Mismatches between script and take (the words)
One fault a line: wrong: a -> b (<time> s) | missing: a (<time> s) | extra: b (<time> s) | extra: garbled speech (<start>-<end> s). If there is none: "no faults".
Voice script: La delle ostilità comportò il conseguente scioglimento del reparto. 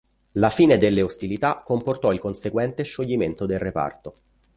extra: fine (0.5 s)